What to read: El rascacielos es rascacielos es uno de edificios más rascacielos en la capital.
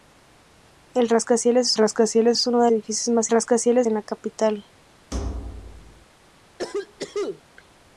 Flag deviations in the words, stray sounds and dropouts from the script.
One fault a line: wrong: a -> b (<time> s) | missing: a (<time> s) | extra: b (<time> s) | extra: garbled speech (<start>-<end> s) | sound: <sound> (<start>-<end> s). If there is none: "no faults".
sound: thud (5.1-6.1 s)
sound: cough (6.6-7.4 s)